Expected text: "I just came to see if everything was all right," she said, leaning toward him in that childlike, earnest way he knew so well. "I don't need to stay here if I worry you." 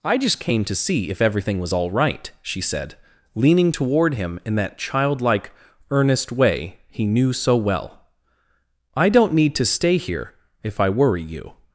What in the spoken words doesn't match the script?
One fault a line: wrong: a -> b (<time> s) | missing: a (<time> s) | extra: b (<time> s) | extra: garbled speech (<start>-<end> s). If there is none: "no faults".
no faults